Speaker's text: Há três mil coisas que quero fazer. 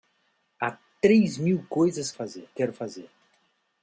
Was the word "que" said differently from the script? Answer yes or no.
yes